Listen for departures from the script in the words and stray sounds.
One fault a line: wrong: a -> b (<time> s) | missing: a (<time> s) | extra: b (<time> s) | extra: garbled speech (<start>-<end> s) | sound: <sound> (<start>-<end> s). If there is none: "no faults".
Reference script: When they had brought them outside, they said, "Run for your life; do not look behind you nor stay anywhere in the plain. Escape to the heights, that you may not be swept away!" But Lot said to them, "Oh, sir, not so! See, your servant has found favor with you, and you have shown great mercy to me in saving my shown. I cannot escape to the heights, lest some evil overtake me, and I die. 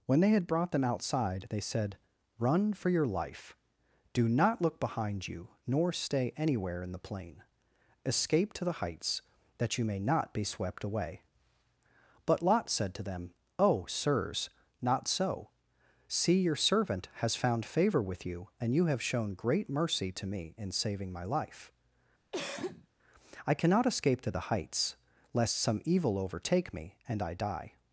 wrong: sir -> sirs (13.9 s)
wrong: shown -> life (21.2 s)
sound: cough (22.3-22.9 s)